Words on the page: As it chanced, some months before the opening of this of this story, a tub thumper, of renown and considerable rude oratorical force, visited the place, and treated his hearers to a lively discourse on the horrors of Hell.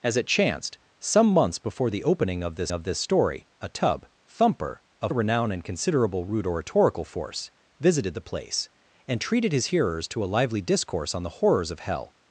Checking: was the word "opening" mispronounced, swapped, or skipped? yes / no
no